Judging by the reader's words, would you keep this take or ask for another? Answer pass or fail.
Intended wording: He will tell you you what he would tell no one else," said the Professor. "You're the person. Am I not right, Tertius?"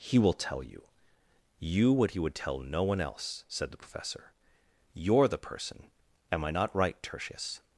pass